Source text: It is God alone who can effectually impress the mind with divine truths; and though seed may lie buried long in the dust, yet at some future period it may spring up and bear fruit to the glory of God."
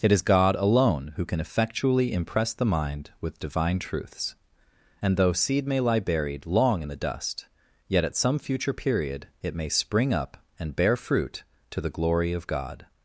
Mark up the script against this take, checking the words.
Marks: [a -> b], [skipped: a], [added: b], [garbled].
It is God alone who can effectually impress the mind with divine truths; and though seed may lie buried long in the dust, yet at some future period it may spring up and bear fruit to the glory of God."